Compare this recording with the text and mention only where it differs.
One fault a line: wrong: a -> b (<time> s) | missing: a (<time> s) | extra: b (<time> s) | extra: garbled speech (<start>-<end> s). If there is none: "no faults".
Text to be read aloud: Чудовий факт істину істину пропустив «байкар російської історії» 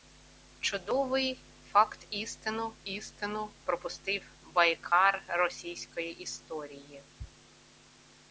no faults